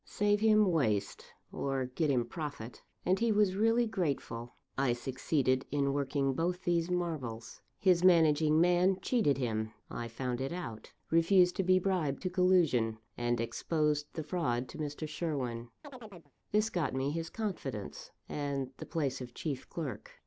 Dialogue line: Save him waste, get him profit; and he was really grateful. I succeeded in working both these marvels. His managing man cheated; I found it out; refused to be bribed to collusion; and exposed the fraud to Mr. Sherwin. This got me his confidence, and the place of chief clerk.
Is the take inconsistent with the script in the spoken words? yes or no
yes